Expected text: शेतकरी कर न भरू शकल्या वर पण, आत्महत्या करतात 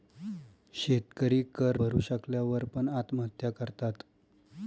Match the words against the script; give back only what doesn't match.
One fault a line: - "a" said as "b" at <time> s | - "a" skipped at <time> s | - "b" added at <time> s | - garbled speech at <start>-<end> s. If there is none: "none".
- "न" skipped at 1.8 s